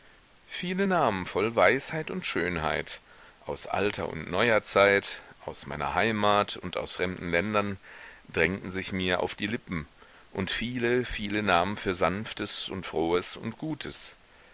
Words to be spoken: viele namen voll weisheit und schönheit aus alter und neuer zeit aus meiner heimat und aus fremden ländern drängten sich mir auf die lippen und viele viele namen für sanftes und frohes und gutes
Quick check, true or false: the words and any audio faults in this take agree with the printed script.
true